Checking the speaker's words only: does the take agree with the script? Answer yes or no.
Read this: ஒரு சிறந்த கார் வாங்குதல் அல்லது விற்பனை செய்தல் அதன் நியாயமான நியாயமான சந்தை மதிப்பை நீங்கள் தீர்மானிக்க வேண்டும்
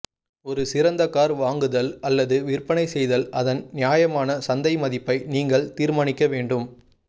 no